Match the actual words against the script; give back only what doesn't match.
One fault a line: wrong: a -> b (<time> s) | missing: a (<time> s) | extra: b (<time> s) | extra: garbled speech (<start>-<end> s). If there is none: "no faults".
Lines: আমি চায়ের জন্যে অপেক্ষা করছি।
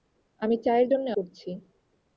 missing: অপেক্ষা (1.1 s)